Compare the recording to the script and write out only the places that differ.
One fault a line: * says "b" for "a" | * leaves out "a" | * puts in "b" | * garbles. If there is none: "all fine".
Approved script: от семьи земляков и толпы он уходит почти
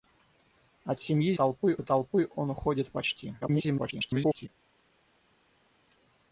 * says "толпы" for "земляков"
* garbles